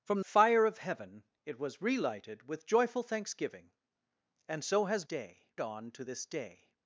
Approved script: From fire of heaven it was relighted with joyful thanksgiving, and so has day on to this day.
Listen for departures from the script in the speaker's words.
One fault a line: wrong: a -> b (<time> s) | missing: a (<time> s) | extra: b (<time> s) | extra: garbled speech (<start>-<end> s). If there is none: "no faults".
no faults